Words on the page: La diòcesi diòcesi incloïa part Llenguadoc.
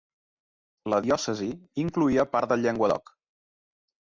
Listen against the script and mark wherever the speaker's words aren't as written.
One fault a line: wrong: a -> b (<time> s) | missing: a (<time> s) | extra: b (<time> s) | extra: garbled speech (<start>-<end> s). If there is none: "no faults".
missing: diòcesi (1.5 s)
extra: del (2.5 s)